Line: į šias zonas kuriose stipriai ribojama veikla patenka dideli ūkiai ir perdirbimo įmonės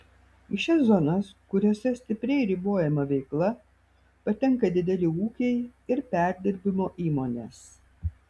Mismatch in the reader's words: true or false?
false